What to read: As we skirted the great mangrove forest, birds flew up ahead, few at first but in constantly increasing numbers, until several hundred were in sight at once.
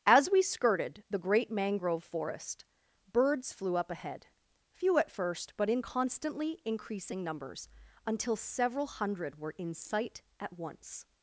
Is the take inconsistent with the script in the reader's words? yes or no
no